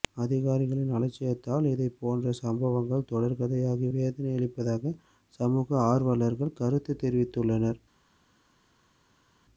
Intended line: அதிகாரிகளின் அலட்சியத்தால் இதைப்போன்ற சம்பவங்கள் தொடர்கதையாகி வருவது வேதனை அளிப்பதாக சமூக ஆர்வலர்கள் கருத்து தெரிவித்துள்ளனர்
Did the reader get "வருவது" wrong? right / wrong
wrong